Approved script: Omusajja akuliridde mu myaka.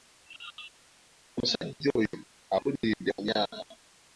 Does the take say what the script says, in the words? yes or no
no